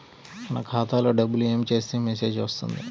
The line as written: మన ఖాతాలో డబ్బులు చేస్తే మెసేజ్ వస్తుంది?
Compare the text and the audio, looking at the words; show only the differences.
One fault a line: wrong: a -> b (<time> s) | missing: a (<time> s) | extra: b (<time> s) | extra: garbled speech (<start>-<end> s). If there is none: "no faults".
extra: ఏమి (1.4 s)